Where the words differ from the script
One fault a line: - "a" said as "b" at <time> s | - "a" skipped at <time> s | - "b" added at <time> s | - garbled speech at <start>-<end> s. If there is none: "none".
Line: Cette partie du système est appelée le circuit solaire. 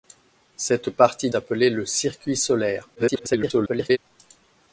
- "du système est" skipped at 1.3 s
- garbled speech at 3.0-4.0 s